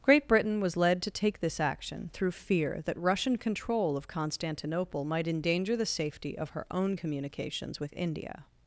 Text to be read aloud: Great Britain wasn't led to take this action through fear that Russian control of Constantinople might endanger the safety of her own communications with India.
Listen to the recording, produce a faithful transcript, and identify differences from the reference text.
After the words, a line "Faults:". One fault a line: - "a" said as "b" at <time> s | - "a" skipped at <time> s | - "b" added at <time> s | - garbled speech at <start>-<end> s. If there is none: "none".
Great Britain was led to take this action through fear that Russian control of Constantinople might endanger the safety of her own communications with India.
Faults:
- "wasn't" said as "was" at 0.6 s